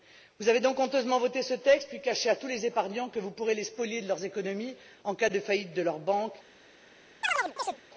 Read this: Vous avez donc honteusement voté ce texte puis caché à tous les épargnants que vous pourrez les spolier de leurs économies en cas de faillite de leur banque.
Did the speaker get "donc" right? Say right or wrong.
right